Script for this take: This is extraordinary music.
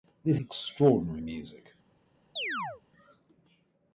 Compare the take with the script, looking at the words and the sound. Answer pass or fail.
fail